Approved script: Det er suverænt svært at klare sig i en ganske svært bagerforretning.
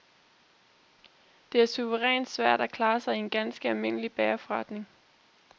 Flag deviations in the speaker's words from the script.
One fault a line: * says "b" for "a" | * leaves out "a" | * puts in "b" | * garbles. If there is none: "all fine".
* says "almindelig" for "svært"